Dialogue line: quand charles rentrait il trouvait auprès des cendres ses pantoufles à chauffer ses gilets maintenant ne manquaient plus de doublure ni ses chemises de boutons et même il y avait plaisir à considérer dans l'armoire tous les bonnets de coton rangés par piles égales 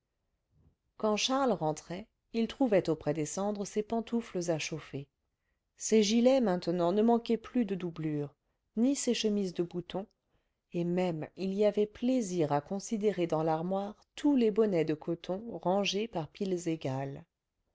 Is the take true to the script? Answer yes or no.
yes